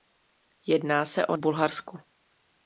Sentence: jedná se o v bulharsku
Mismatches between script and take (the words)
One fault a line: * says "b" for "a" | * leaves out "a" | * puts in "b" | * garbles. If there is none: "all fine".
all fine